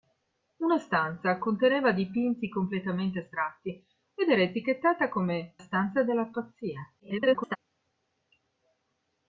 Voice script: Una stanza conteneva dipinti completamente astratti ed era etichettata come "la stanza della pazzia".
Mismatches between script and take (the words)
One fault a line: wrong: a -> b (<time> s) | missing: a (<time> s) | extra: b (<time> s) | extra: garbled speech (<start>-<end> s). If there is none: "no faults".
missing: la (5.5 s)
extra: garbled speech (7.0-7.6 s)